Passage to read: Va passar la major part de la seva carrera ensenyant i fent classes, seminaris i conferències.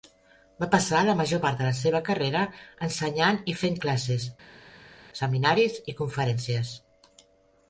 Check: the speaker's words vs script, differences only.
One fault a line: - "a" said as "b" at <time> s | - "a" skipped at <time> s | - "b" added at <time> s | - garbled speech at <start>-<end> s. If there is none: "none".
none